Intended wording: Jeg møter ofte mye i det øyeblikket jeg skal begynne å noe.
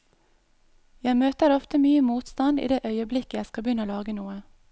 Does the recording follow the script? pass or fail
fail